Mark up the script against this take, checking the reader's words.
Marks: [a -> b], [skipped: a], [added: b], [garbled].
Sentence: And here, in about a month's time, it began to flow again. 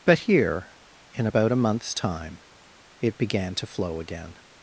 [And -> But] here, in about a month's time, it began to flow again.